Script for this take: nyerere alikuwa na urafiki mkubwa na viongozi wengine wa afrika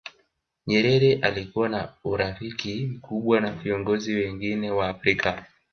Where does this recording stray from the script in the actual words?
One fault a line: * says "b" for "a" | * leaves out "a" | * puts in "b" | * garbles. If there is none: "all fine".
all fine